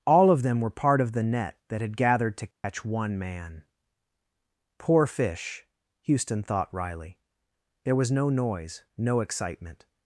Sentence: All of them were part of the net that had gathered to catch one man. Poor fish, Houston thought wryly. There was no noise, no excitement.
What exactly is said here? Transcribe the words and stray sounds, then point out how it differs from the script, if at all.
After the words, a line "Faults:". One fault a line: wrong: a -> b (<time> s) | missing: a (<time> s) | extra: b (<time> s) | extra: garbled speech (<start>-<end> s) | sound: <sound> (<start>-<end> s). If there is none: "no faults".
All of them were part of the net that had gathered to catch one man. Poor fish, Houston thought wryly. There was no noise, no excitement.
Faults:
sound: dropout (2.5-2.6 s)